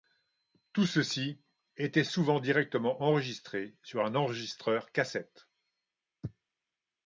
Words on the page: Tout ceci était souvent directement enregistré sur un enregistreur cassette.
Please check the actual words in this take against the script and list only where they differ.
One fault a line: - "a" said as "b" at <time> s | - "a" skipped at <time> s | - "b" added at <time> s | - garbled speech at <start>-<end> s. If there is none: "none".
none